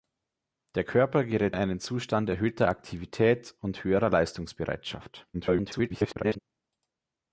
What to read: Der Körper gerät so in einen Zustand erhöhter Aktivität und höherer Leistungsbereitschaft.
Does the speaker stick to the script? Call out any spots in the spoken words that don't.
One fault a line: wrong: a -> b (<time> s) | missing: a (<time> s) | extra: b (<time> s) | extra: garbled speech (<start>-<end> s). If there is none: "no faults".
missing: so (1.6 s)
extra: garbled speech (5.3-6.4 s)